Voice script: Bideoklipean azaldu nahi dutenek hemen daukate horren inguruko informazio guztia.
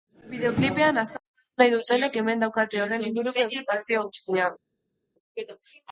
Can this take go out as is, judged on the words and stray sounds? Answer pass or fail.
pass